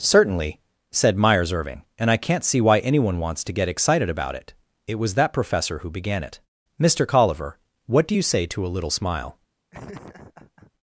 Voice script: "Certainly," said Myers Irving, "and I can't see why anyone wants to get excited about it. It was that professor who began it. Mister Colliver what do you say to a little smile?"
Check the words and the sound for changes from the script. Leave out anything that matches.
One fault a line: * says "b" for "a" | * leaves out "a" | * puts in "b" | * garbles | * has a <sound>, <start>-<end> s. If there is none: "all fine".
* has a laugh, 9.7-10.7 s